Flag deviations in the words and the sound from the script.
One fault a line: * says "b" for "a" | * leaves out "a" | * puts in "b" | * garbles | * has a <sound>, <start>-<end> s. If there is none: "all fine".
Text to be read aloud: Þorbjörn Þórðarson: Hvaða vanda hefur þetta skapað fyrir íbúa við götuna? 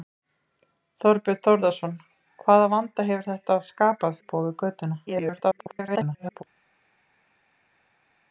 * leaves out "fyrir"
* garbles